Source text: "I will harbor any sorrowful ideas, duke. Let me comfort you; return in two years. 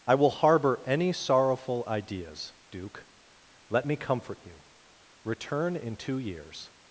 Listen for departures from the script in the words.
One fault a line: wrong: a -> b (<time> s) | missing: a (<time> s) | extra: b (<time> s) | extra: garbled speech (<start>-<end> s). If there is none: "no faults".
no faults